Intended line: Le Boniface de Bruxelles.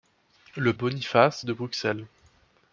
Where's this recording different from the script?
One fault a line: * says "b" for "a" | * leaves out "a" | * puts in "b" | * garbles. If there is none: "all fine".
all fine